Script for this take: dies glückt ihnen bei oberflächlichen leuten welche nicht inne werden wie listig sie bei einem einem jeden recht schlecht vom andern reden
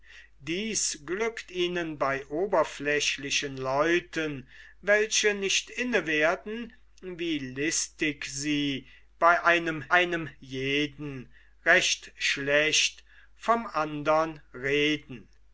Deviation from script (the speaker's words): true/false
false